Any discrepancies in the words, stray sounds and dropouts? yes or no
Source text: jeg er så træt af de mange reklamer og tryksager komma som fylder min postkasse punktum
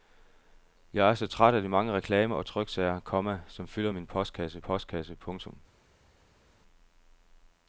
yes